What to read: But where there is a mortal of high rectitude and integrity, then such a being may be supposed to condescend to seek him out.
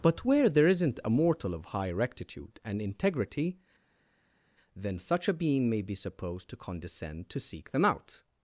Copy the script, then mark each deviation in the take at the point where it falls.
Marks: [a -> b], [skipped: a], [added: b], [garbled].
But where there [is -> isn't] a mortal of high rectitude and integrity, then such a being may be supposed to condescend to seek [him -> them] out.